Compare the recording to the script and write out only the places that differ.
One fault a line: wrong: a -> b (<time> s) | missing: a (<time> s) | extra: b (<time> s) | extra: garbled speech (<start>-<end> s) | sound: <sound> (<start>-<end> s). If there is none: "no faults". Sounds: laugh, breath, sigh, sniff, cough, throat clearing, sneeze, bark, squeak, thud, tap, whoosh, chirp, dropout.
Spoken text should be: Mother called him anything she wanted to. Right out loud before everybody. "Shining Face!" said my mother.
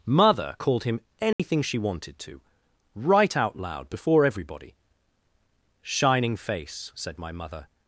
sound: dropout (1.3-1.4 s)